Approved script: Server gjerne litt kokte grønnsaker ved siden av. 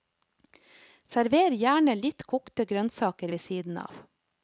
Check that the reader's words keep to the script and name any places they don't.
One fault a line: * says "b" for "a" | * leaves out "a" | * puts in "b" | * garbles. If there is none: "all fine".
all fine